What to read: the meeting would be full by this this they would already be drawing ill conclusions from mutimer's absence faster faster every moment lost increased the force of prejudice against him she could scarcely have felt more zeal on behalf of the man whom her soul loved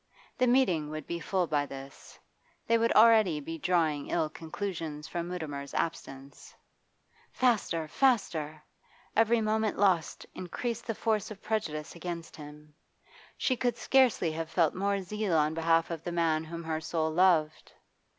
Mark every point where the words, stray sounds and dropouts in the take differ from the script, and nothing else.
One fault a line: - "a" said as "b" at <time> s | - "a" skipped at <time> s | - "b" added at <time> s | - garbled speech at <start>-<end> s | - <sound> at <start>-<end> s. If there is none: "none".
- "this" skipped at 2.2 s